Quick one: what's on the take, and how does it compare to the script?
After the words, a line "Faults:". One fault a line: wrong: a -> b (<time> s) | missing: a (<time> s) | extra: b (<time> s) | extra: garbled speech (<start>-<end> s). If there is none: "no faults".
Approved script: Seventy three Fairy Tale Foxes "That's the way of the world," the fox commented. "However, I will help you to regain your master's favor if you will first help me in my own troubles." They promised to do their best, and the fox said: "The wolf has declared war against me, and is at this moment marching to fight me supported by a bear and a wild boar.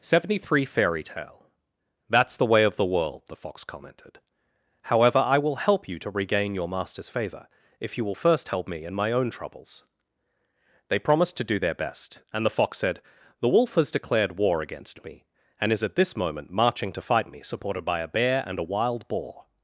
Seventy three Fairy Tale "That's the way of the world," the fox commented. "However, I will help you to regain your master's favor if you will first help me in my own troubles." They promised to do their best, and the fox said: "The wolf has declared war against me, and is at this moment marching to fight me supported by a bear and a wild boar.
Faults:
missing: Foxes (1.4 s)